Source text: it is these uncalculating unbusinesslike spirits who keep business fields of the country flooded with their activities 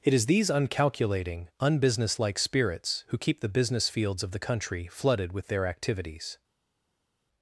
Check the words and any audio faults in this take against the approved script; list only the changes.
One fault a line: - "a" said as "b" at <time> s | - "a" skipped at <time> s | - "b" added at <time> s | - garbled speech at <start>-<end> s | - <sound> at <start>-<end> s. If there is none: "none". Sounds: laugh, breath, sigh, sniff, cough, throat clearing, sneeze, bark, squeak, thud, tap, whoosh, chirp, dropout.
- "the" added at 3.4 s